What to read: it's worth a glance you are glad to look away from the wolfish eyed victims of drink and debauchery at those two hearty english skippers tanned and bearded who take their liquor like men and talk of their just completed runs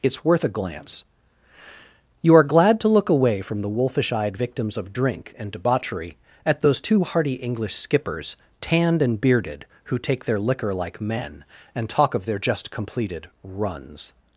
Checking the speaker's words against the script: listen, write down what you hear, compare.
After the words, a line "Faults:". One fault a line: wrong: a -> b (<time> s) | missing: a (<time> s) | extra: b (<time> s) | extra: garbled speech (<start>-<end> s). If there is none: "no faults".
it's worth a glance you are glad to look away from the wolfish eyed victims of drink and debauchery at those two hearty english skippers tanned and bearded who take their liquor like men and talk of their just completed runs
Faults:
no faults